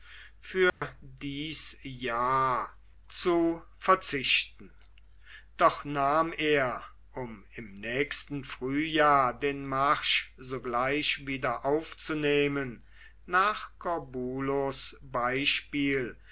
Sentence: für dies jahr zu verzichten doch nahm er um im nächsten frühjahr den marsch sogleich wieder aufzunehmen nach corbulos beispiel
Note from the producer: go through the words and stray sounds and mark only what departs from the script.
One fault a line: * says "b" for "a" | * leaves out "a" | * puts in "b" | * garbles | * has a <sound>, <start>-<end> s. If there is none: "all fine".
* has a dropout, 0.7-0.8 s